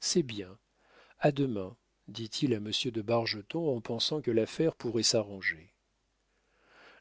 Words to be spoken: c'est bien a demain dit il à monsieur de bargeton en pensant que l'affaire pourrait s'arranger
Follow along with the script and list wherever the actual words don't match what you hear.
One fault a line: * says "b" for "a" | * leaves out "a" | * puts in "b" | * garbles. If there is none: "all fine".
all fine